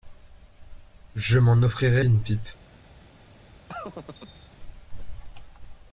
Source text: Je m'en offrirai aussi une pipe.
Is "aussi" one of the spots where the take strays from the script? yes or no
yes